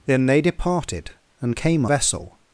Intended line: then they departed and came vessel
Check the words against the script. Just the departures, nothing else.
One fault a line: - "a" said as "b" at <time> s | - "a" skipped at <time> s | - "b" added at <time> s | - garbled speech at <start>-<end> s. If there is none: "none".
none